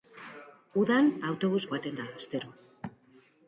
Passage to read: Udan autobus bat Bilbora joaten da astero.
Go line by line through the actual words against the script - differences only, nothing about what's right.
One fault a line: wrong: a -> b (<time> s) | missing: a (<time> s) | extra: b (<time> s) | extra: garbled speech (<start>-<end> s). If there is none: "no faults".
missing: bat Bilbora (1.6 s)